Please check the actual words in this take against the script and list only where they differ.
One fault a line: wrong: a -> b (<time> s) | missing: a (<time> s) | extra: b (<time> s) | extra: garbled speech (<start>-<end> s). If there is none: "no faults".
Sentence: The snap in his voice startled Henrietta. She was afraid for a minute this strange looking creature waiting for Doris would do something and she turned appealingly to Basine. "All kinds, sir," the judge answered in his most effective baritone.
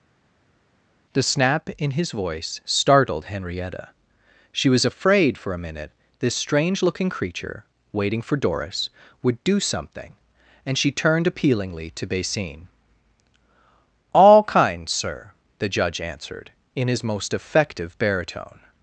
no faults